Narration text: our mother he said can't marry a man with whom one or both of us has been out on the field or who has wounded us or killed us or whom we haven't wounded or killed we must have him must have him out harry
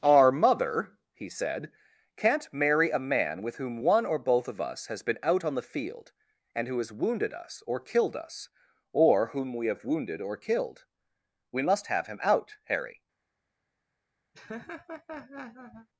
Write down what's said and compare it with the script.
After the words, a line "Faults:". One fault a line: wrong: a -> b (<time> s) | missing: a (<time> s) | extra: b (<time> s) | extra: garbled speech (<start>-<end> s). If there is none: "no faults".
our mother he said can't marry a man with whom one or both of us has been out on the field and who has wounded us or killed us or whom we have wounded or killed we must have him out harry
Faults:
wrong: or -> and (6.5 s)
wrong: haven't -> have (9.7 s)
missing: must have him (12.2 s)